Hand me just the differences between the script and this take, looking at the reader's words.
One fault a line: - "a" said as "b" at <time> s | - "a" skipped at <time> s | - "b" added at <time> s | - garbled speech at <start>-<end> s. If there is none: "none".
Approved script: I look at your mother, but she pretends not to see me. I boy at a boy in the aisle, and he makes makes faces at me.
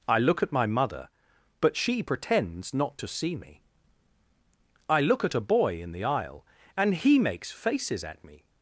- "your" said as "my" at 0.5 s
- "boy" said as "look" at 5.0 s
- "makes" skipped at 7.5 s